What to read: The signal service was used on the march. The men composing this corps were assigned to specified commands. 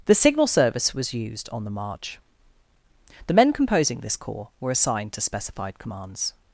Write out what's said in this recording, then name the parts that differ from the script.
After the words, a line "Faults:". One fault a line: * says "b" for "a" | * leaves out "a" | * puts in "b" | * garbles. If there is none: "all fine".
The signal service was used on the march. The men composing this corps were assigned to specified commands.
Faults:
all fine